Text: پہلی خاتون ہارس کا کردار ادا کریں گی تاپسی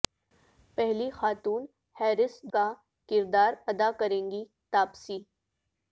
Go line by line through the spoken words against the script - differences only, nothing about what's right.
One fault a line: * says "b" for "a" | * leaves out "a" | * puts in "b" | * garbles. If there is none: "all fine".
all fine